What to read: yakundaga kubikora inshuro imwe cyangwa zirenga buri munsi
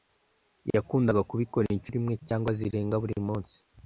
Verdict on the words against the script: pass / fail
pass